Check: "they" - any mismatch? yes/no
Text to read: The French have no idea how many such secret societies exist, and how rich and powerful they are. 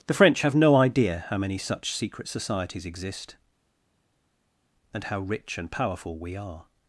yes